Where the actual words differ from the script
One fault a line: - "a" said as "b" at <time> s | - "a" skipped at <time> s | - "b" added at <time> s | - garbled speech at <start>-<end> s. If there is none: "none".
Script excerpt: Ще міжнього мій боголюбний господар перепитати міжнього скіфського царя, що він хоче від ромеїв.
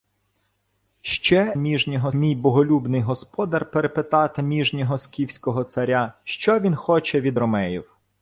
none